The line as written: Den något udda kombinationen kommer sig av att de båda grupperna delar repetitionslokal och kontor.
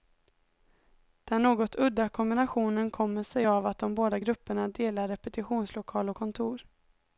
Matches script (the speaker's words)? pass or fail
pass